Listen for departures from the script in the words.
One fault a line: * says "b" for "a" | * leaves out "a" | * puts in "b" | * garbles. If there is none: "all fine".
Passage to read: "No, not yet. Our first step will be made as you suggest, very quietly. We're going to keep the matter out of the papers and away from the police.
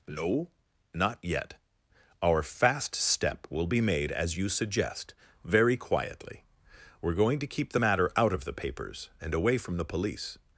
* says "fast" for "first"